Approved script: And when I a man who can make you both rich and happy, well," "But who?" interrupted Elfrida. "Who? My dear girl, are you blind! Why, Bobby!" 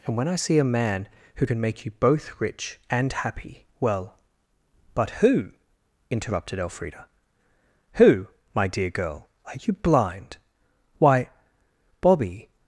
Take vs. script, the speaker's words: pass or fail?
fail